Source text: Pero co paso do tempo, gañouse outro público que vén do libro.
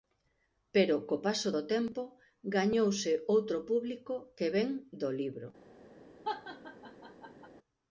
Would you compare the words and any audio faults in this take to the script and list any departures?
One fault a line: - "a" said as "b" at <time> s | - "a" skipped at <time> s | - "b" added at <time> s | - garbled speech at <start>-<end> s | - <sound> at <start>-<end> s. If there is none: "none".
- laugh at 6.2-7.5 s